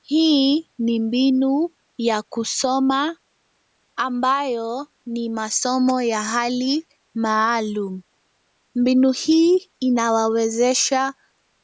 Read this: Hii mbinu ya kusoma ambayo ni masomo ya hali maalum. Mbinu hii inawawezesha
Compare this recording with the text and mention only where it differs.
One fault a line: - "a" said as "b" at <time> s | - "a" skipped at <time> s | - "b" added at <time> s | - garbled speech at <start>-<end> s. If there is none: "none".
- "ni" added at 0.8 s